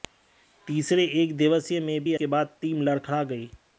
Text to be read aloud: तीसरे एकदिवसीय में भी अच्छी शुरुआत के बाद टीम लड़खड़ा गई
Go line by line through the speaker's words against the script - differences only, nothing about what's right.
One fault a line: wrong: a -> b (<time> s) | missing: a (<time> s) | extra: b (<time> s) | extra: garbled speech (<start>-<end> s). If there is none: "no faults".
missing: अच्छी शुरुआत (2.1 s)